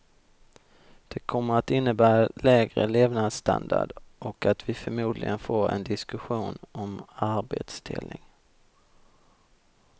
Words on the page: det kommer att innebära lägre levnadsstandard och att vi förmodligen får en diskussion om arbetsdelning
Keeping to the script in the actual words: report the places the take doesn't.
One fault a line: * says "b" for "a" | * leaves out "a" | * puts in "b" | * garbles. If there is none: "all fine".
all fine